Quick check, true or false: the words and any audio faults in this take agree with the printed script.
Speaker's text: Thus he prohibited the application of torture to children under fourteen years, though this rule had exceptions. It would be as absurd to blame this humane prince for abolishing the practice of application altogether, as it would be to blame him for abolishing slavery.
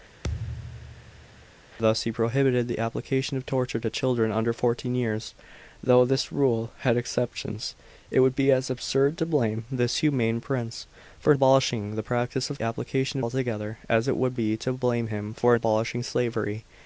false